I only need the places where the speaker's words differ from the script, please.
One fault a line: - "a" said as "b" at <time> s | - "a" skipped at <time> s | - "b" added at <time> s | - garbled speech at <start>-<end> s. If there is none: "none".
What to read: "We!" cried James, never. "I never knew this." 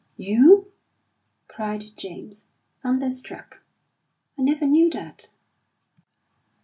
- "We" said as "You" at 0.2 s
- "never" said as "thunderstruck" at 2.8 s
- "this" said as "that" at 4.9 s